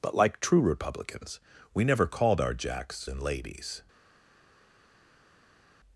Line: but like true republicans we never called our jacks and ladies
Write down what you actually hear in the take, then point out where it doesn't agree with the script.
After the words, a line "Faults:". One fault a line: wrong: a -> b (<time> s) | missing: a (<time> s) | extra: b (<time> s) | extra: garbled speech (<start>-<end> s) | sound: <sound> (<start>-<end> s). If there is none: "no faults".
but like true republicans we never called our jacks and ladies
Faults:
no faults